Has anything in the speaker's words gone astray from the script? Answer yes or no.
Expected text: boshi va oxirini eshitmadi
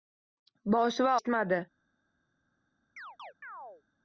yes